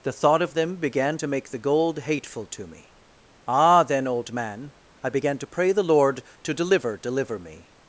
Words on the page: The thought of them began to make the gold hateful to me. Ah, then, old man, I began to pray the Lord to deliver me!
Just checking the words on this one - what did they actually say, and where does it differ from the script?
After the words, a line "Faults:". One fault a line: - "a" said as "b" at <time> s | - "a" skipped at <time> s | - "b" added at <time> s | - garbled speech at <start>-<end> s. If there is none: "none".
The thought of them began to make the gold hateful to me. Ah, then, old man, I began to pray the Lord to deliver deliver me!
Faults:
- "deliver" added at 7.0 s